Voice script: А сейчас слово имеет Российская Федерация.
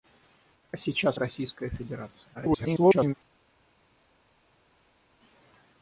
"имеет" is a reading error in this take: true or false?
true